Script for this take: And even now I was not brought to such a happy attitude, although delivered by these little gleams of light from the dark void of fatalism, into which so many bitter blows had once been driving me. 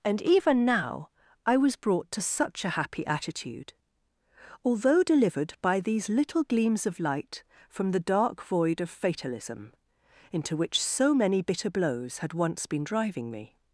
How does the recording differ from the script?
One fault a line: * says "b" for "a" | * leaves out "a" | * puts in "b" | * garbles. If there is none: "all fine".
* leaves out "not"